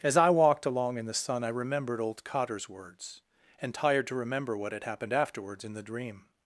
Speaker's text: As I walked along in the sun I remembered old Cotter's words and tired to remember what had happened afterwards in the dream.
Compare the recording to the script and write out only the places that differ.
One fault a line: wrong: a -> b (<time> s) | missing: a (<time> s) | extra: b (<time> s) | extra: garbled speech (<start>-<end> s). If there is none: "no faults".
no faults